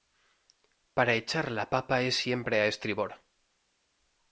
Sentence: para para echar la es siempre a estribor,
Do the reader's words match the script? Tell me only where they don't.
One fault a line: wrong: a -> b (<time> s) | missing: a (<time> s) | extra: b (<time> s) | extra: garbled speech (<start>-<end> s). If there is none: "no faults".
missing: para (1.1 s)
extra: papa (1.7 s)